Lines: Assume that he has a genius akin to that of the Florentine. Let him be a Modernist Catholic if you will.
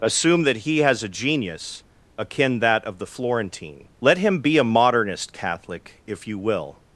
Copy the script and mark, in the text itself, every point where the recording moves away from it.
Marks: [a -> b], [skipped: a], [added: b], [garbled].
Assume that he has a genius akin [skipped: to] that of the Florentine. Let him be a Modernist Catholic if you will.